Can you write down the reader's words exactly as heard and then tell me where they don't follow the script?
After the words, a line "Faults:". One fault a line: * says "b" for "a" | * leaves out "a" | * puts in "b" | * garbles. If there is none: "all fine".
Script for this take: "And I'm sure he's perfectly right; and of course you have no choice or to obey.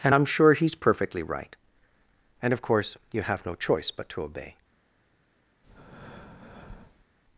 "And I'm sure he's perfectly right; and of course you have no choice but to obey.
Faults:
* says "but" for "or"